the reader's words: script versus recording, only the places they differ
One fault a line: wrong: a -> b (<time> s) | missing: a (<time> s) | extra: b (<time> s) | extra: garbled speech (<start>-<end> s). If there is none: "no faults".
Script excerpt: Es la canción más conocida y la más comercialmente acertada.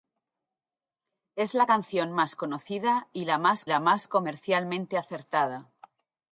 extra: la más (3.7 s)